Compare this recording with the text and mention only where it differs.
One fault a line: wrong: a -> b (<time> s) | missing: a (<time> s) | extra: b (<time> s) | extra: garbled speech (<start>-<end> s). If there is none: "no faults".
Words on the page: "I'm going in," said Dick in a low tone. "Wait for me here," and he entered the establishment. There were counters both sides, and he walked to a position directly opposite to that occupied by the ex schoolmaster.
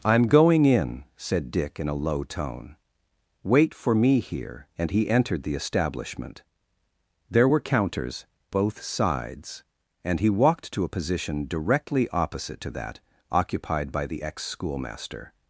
no faults